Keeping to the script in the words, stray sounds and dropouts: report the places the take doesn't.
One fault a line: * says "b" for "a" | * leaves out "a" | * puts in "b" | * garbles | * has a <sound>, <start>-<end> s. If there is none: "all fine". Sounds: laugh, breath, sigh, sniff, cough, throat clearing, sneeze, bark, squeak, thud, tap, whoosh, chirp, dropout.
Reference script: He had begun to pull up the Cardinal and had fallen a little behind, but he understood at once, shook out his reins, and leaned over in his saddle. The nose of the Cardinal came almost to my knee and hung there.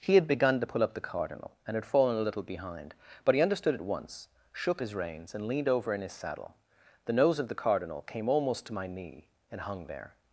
* leaves out "out"